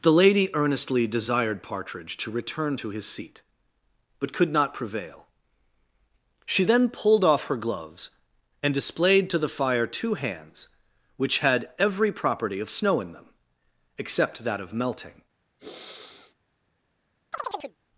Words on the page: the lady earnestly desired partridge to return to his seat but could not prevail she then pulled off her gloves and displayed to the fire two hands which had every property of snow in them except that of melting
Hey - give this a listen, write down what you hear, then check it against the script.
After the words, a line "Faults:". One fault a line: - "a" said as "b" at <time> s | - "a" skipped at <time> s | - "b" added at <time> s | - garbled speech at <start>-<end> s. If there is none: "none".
the lady earnestly desired partridge to return to his seat but could not prevail she then pulled off her gloves and displayed to the fire two hands which had every property of snow in them except that of melting
Faults:
none